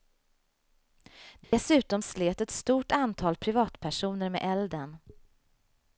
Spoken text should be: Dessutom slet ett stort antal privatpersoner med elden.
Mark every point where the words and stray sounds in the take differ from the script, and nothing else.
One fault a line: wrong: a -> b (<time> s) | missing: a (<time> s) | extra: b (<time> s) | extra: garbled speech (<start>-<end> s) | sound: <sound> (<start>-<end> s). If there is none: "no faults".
sound: dropout (1.4-1.5 s)